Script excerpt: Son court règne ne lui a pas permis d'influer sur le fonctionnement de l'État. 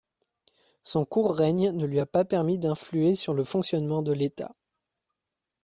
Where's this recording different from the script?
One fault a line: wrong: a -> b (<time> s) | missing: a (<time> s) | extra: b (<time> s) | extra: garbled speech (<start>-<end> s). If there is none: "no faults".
no faults